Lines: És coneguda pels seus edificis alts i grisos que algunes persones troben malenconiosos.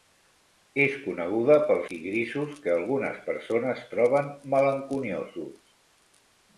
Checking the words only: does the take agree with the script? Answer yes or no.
no